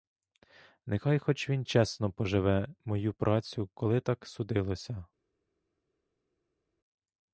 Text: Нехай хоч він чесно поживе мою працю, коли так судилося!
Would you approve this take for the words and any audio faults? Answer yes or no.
yes